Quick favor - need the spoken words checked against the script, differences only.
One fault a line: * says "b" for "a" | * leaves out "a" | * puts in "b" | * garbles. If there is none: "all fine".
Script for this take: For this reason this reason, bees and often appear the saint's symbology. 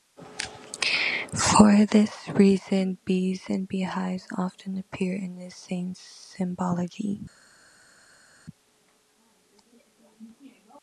* leaves out "this reason"
* puts in "beehives"
* puts in "in"